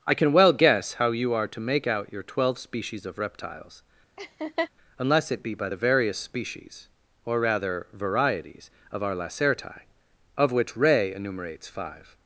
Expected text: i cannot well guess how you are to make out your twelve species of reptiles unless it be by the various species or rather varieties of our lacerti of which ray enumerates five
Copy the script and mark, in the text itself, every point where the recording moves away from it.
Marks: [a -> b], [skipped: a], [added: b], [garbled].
i [cannot -> can] well guess how you are to make out your twelve species of reptiles unless it be by the various species or rather varieties of our lacerti of which ray enumerates five